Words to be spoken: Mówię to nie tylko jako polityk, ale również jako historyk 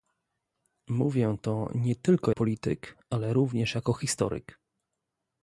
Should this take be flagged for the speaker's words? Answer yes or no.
yes